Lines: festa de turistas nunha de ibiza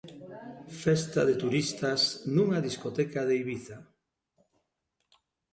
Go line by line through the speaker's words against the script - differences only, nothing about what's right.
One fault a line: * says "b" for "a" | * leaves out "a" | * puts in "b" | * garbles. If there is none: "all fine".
* puts in "discoteca"